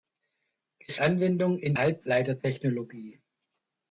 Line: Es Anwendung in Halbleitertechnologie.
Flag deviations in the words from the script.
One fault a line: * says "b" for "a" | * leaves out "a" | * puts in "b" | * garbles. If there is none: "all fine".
all fine